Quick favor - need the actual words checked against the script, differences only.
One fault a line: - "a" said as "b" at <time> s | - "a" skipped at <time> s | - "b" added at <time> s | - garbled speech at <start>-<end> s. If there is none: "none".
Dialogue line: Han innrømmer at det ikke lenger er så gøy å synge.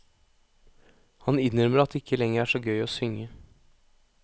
none